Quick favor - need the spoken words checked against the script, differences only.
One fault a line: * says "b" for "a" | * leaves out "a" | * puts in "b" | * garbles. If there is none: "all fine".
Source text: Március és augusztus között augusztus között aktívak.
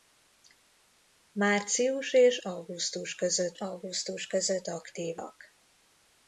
all fine